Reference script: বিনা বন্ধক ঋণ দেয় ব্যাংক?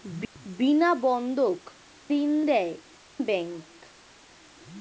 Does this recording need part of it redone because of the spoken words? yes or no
no